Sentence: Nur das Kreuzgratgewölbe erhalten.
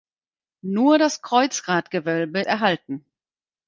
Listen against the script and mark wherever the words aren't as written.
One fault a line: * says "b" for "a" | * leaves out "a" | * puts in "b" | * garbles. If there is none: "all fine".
all fine